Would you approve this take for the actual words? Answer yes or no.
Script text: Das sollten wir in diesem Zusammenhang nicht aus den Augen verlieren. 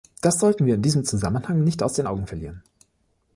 yes